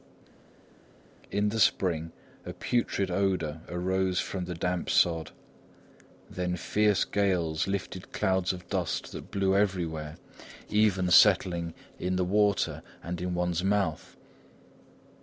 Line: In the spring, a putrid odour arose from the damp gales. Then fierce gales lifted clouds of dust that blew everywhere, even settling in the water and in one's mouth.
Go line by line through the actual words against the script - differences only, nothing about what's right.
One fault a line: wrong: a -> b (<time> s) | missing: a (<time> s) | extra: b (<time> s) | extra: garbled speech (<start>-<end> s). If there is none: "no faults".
wrong: gales -> sod (4.9 s)